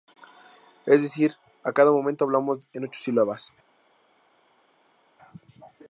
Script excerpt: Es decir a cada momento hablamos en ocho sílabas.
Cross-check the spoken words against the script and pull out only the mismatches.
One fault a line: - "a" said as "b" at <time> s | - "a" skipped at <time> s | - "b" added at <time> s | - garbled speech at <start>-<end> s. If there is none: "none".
none